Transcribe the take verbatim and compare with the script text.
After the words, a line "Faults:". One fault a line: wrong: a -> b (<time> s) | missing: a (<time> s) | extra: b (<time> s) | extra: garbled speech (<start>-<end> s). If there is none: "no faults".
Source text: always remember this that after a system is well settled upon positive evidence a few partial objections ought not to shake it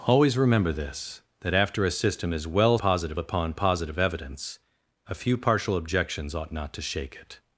always remember this that after a system is well positive upon positive evidence a few partial objections ought not to shake it
Faults:
wrong: settled -> positive (2.8 s)